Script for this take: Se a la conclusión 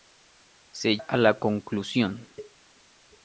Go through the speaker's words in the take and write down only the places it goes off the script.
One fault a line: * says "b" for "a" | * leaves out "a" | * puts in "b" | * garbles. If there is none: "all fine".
all fine